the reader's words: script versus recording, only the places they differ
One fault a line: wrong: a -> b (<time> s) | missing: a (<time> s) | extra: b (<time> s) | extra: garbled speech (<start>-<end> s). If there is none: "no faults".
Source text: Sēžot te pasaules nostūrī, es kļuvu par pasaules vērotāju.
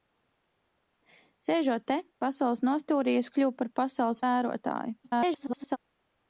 extra: garbled speech (5.0-5.8 s)